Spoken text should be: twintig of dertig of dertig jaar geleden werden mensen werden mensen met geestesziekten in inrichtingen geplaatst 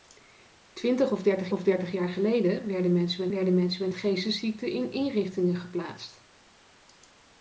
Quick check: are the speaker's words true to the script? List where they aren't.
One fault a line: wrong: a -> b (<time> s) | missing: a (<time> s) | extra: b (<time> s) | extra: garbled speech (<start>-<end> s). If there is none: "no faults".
no faults